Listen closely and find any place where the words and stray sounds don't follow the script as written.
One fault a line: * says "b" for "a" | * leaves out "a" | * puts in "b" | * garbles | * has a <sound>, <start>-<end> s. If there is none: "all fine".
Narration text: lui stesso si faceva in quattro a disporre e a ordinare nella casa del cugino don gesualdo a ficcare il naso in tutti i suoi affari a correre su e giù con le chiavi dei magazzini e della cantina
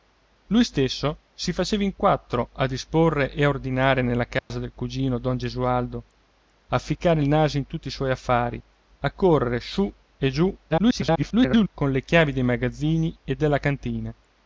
* has a dropout, 4.4-4.5 s
* garbles